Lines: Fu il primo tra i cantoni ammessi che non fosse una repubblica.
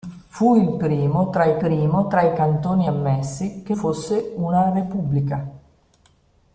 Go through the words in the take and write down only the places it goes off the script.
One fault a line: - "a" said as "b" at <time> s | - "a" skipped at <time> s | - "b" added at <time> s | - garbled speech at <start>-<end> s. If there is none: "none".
- "primo tra i" added at 1.6 s
- "non" skipped at 3.8 s